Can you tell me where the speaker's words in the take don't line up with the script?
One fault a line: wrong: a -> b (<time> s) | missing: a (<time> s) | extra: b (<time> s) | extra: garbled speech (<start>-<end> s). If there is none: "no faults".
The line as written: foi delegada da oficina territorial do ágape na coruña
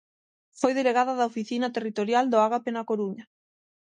no faults